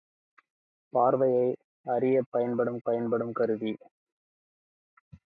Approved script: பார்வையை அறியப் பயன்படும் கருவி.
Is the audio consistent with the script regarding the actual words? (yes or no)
no